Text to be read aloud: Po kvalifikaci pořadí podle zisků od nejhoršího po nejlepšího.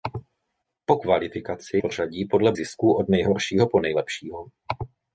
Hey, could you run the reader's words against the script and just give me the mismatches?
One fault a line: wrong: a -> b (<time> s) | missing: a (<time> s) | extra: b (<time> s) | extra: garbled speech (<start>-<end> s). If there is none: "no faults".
no faults